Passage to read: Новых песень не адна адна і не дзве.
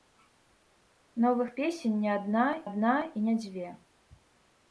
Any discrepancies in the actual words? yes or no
no